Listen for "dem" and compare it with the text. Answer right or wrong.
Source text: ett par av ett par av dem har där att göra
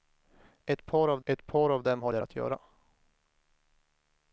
right